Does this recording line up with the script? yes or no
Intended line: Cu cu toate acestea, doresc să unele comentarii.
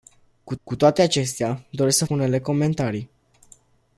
yes